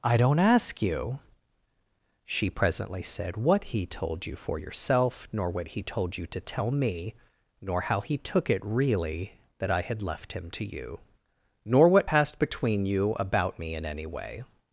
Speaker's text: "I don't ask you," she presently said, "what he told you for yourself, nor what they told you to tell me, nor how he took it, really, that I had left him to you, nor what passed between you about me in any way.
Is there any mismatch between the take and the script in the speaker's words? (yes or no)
yes